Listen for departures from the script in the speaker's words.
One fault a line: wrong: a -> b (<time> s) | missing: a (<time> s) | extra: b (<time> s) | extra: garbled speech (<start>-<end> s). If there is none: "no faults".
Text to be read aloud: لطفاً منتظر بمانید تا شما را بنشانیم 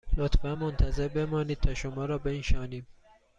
no faults